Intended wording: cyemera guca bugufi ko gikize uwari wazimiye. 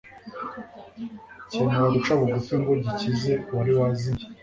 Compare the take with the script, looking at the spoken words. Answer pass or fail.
fail